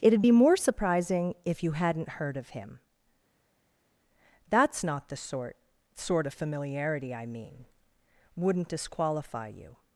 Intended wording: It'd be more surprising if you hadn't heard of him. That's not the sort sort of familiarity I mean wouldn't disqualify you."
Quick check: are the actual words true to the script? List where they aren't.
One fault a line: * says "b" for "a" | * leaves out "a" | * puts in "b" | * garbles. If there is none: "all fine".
all fine